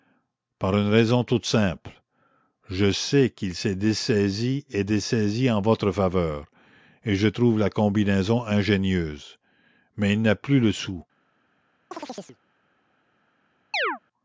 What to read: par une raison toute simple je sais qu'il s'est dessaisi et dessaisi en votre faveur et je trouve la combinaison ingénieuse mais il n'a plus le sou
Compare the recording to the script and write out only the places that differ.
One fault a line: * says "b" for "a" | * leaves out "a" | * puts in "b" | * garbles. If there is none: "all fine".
all fine